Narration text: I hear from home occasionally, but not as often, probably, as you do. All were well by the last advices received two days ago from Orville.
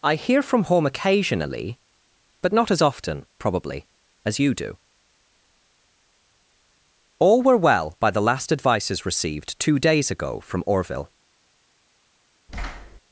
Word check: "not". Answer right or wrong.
right